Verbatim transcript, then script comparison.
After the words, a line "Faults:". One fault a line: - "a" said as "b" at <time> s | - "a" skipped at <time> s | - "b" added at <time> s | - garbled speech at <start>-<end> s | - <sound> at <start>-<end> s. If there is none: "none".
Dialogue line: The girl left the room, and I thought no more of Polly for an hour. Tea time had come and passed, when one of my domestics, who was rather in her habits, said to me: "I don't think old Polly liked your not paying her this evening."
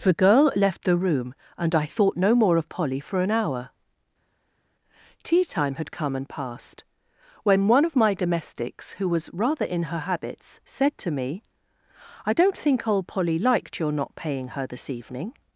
The girl left the room, and I thought no more of Polly for an hour. Tea time had come and passed, when one of my domestics, who was rather in her habits, said to me: "I don't think old Polly liked your not paying her this evening."
Faults:
none